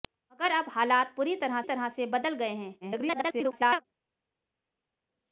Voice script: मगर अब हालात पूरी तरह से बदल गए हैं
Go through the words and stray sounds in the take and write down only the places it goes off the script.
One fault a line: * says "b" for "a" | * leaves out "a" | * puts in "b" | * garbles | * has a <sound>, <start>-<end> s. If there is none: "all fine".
* puts in "तरह"
* garbles